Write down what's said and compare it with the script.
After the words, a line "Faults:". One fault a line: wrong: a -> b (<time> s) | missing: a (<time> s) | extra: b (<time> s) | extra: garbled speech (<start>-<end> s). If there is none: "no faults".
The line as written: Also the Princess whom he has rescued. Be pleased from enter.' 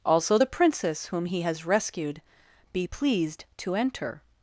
Also the Princess whom he has rescued. Be pleased to enter.'
Faults:
wrong: from -> to (3.6 s)